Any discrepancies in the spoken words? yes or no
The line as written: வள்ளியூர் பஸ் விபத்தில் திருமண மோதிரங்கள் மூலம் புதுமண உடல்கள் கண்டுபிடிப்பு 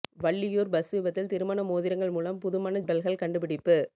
no